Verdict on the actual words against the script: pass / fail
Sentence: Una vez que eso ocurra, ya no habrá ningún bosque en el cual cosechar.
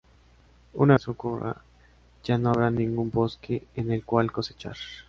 fail